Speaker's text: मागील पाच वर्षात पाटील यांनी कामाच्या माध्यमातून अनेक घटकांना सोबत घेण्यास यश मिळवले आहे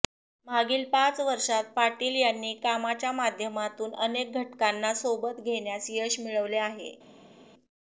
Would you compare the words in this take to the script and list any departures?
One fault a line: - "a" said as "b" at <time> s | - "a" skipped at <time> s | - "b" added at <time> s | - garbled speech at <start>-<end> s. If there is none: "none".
none